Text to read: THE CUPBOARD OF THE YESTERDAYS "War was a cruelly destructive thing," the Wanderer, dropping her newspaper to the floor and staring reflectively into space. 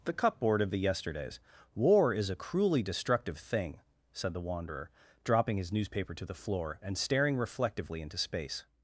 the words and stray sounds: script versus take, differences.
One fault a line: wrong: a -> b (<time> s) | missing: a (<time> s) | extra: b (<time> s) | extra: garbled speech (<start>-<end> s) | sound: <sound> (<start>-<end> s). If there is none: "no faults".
wrong: was -> is (2.1 s)
extra: said (4.1 s)
wrong: her -> his (5.6 s)